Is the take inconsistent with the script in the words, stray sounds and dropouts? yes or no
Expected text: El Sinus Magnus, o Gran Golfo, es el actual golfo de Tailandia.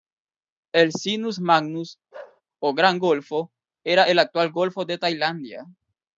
yes